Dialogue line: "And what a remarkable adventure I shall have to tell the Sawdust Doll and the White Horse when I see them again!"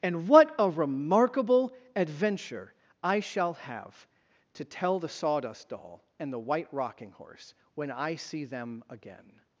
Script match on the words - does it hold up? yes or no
no